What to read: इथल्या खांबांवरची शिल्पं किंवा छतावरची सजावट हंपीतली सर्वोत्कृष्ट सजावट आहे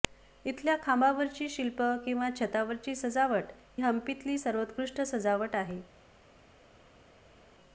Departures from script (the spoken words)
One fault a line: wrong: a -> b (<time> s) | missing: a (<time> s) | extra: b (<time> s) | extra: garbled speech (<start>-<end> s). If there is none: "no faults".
no faults